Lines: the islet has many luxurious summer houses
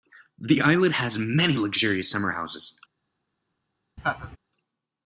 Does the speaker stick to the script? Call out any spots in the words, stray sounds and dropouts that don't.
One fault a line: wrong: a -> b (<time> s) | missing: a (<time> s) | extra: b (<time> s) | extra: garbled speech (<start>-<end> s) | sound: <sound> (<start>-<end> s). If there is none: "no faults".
sound: laugh (4.0-4.4 s)